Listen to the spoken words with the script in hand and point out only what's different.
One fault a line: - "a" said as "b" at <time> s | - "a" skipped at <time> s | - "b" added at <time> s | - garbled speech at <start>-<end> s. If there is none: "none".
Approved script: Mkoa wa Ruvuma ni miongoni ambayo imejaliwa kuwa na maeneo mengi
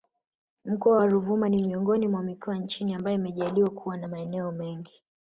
- "mwa mikoa nchini" added at 2.1 s